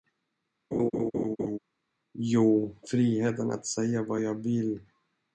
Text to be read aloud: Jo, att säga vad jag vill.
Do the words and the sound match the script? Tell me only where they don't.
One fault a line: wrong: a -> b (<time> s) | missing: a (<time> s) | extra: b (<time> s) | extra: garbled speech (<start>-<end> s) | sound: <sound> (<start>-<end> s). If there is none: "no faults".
sound: laugh (0.7-1.6 s)
extra: friheten (2.8 s)